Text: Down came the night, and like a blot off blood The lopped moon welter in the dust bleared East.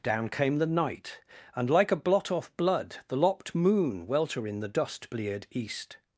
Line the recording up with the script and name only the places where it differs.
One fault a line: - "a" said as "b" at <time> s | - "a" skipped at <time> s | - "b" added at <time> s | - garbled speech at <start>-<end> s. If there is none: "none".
none